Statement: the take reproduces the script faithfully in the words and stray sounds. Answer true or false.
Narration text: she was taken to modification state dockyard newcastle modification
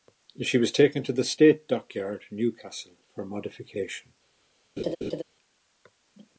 false